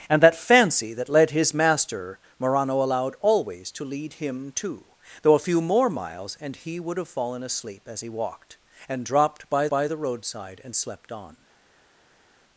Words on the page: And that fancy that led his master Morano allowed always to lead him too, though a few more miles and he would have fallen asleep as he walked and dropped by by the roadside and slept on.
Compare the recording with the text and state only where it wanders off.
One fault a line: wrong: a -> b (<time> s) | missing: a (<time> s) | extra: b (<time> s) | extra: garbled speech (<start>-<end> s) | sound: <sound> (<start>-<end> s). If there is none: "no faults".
no faults